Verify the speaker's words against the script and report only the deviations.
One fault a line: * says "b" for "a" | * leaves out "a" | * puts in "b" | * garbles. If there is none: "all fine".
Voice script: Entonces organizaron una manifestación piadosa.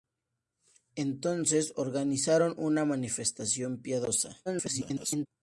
* garbles